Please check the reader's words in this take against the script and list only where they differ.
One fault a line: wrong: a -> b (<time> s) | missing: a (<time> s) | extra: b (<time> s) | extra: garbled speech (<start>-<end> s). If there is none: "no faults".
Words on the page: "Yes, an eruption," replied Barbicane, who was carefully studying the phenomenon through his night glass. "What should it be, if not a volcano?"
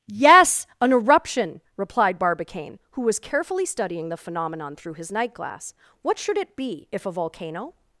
missing: not (7.0 s)